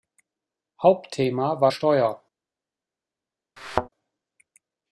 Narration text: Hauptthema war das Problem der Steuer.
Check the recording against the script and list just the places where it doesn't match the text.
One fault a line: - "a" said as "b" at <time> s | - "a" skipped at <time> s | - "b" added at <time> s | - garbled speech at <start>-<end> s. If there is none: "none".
- "das Problem der" skipped at 1.7 s